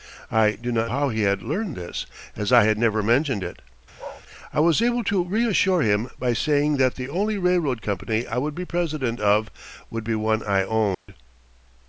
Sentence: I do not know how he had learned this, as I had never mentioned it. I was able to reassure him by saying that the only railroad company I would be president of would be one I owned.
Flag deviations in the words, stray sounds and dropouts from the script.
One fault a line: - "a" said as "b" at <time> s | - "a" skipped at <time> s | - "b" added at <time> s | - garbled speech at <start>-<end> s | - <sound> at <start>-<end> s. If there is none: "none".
- "know" skipped at 0.9 s
- bark at 4.0-4.2 s
- dropout at 10.9-11.1 s